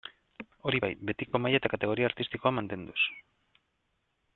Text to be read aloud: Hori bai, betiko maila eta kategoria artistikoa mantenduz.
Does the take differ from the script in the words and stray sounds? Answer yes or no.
yes